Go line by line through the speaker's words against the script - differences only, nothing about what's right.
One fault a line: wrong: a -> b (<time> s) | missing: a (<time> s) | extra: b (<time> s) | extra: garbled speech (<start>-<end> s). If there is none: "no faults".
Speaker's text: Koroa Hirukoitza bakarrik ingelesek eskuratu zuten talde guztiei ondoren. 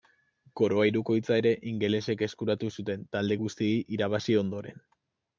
wrong: bakarrik -> ere (1.4 s)
extra: irabazi (4.0 s)